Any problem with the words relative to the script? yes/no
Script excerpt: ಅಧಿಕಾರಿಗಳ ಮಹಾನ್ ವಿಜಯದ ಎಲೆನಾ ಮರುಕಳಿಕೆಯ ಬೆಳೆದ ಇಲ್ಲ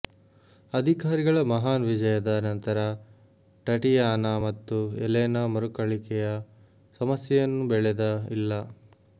yes